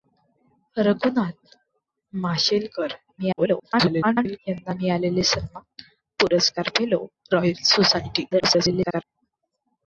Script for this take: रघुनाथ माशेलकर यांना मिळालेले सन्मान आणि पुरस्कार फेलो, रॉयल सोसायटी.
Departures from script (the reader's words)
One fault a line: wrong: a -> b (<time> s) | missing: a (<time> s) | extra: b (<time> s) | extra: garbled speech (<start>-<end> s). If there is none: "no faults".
extra: garbled speech (3.2-4.4 s)
missing: आणि (5.8 s)
extra: garbled speech (8.3-9.0 s)